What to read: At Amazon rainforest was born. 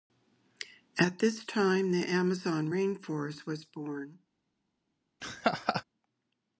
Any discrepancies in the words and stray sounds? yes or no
yes